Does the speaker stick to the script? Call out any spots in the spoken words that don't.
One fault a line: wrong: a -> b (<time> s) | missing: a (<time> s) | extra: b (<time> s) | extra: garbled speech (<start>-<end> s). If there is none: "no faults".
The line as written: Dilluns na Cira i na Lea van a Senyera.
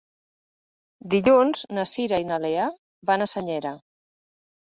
no faults